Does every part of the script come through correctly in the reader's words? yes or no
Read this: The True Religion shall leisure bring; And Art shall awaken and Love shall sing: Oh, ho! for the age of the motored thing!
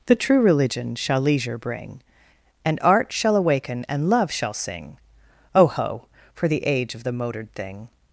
yes